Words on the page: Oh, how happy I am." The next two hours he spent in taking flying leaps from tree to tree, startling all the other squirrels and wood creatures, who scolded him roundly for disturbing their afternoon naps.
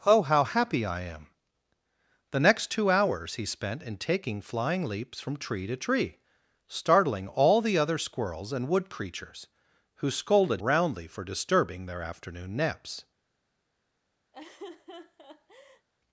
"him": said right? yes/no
no